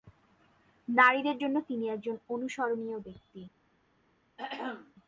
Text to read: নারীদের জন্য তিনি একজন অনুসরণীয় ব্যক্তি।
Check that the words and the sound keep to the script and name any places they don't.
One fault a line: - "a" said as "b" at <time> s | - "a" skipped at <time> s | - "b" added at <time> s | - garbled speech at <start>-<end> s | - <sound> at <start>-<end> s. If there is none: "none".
- throat clearing at 4.4-4.9 s